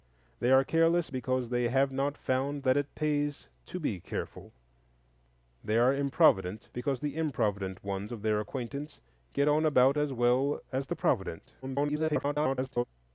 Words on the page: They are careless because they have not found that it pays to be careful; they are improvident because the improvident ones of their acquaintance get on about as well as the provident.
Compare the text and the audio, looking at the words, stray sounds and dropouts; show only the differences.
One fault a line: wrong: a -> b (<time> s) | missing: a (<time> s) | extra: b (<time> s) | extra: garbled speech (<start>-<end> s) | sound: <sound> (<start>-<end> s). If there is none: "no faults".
extra: garbled speech (11.6-12.8 s)